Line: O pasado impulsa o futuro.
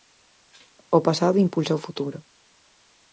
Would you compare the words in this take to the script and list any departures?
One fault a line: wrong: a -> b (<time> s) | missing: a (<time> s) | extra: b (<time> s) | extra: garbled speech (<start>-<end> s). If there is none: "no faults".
no faults